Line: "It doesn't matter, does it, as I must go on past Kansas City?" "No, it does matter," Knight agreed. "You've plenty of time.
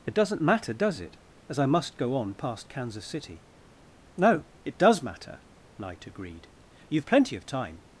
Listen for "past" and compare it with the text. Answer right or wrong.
right